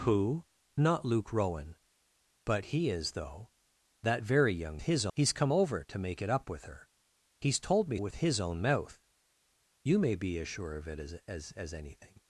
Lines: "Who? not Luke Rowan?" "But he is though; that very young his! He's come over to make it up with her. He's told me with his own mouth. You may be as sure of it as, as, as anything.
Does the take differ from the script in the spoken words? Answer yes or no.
no